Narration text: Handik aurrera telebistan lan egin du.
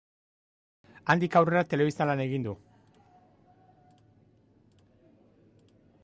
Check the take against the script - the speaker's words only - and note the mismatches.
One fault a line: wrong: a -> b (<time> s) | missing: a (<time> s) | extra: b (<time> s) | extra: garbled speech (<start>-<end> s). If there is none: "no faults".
no faults